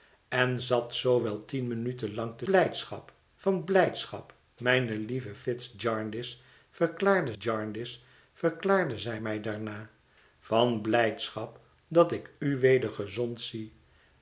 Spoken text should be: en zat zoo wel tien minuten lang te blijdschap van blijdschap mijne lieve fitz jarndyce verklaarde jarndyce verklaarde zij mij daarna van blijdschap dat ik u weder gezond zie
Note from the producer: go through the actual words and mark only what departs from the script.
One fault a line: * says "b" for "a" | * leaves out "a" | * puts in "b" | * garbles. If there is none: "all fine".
all fine